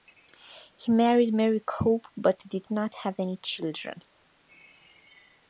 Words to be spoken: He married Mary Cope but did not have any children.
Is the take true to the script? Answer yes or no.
yes